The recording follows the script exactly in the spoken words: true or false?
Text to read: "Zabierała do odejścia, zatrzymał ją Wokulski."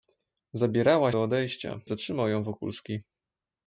true